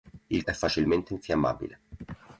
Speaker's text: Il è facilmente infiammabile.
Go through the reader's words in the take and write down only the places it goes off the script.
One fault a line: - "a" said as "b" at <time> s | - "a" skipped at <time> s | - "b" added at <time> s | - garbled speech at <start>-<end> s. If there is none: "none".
none